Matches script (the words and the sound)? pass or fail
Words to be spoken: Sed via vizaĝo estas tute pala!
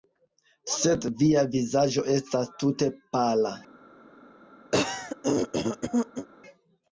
fail